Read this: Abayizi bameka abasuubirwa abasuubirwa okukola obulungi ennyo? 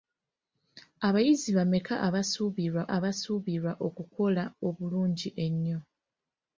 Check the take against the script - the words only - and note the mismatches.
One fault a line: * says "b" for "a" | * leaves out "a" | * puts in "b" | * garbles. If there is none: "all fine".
all fine